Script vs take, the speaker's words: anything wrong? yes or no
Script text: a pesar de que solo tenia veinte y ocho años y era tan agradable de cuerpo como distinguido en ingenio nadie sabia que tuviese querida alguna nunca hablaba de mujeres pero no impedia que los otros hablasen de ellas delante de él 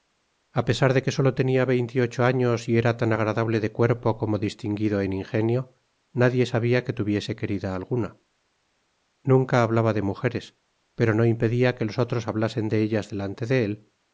no